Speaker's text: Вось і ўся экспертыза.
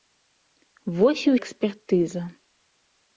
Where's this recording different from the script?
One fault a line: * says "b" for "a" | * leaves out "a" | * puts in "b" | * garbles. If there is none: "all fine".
* leaves out "ўся"